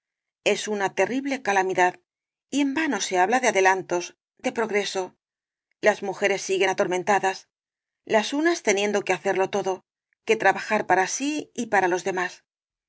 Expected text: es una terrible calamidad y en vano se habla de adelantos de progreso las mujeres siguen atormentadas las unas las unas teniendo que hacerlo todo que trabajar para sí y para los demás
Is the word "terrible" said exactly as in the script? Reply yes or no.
yes